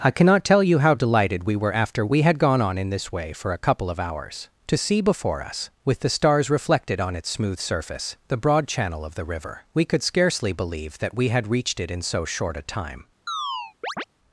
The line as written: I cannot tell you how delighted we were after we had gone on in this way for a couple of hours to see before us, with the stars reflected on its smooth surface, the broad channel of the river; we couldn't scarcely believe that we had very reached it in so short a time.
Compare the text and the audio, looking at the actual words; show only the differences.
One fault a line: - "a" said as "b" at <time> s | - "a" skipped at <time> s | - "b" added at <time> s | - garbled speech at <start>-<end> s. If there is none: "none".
- "couldn't" said as "could" at 9.8 s
- "very" skipped at 11.5 s